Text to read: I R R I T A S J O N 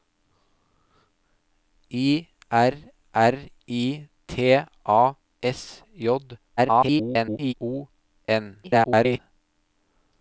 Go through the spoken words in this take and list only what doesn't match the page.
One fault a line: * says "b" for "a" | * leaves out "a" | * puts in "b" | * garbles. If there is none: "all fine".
* garbles
* garbles